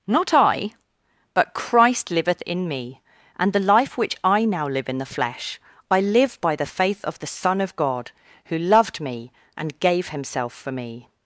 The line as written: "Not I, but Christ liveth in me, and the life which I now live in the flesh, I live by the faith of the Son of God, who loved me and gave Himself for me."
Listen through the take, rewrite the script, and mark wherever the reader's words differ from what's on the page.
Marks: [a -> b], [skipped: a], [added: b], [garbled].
"Not I, but Christ liveth in me, and the life which I now live in the flesh, I live by the faith of the Son of God, who loved me and gave Himself for me."